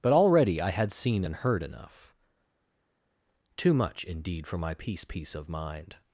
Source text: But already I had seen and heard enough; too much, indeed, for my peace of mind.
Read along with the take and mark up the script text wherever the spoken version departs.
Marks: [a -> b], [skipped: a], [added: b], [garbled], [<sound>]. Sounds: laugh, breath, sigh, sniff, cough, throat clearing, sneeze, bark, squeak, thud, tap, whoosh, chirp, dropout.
But already I had seen and heard enough; too much, indeed, for my peace [added: peace] of mind.